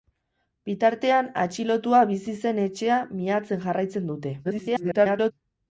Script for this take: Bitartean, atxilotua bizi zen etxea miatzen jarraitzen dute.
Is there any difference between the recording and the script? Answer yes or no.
yes